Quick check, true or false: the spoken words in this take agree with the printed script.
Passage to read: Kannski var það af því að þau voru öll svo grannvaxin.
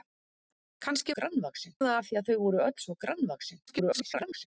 false